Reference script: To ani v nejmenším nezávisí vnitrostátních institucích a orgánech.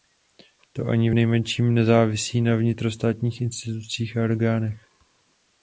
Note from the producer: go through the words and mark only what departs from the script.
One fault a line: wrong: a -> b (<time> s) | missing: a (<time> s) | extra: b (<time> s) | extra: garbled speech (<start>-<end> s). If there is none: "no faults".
extra: na (2.4 s)